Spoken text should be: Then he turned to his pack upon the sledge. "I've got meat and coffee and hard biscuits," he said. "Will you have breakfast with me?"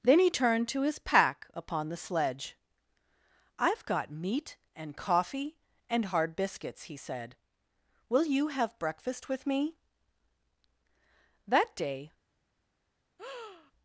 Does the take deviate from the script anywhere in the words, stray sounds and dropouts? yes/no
yes